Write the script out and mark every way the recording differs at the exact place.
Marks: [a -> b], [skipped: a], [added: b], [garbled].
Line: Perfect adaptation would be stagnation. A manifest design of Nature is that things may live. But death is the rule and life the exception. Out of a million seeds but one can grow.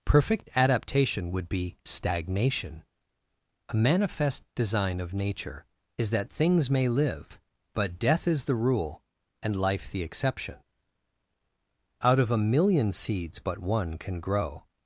Perfect adaptation would be stagnation. A manifest design of Nature is that things may live. But death is the rule and life the exception. Out of a million seeds but one can grow.